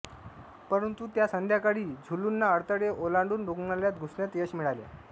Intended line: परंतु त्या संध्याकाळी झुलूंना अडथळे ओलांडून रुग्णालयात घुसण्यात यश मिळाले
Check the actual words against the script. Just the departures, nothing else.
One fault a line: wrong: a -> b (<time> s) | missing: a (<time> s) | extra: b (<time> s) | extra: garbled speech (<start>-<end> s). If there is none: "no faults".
no faults